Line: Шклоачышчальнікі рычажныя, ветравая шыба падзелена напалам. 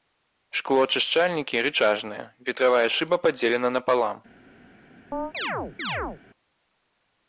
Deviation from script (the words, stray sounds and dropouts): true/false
true